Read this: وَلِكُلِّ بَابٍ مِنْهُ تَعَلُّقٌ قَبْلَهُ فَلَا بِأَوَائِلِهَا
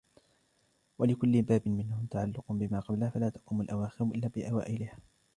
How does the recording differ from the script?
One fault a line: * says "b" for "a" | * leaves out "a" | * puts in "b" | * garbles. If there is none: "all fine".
* puts in "بِمَا"
* puts in "تَقُومُ الْأَوَاخِرُ إلَّا"